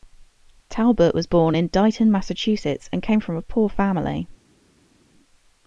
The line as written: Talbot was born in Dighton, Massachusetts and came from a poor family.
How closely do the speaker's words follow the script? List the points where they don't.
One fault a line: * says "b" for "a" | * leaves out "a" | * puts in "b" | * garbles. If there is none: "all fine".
all fine